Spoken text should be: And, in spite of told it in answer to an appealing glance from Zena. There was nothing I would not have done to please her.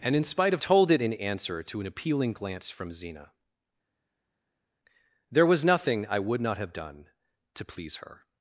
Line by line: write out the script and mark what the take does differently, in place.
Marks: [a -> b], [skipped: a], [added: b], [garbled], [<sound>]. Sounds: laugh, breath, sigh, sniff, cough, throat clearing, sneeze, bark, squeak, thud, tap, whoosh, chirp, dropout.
And, in spite of told it in answer to an appealing glance from Zena. There was nothing I would not have done to please her.